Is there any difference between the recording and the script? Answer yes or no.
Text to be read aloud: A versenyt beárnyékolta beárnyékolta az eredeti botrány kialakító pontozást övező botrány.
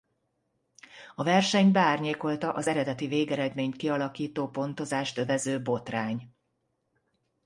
yes